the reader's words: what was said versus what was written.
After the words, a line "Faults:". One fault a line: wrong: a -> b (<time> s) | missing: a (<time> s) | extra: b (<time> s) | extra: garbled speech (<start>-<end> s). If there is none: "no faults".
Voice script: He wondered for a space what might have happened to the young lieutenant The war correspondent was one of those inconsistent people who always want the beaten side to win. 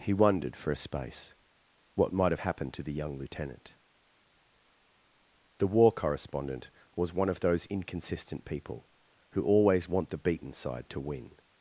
He wondered for a space what might have happened to the young lieutenant The war correspondent was one of those inconsistent people who always want the beaten side to win.
Faults:
no faults